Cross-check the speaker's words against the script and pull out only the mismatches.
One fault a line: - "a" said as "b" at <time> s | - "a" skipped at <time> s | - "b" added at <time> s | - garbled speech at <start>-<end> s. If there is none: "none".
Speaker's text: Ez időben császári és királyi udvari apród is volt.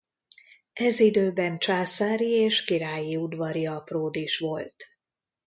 none